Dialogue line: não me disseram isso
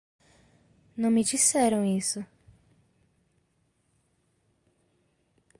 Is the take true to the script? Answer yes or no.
yes